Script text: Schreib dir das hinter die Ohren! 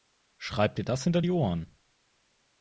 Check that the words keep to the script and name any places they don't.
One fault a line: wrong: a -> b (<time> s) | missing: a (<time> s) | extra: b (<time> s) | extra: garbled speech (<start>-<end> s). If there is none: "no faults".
no faults